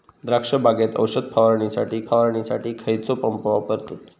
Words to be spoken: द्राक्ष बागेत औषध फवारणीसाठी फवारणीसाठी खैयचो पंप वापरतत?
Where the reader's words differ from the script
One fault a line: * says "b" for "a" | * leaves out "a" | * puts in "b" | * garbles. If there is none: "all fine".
all fine